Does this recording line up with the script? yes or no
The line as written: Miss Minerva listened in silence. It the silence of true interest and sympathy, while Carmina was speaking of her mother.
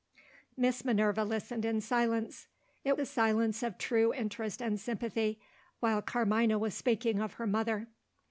yes